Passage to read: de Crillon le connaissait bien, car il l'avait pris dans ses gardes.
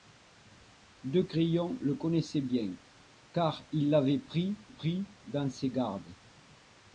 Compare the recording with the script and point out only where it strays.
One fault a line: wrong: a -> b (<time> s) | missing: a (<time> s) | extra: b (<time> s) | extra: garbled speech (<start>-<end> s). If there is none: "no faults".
extra: pris (4.7 s)